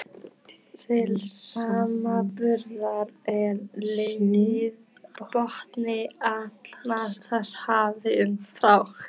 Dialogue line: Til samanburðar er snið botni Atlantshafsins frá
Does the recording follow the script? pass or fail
pass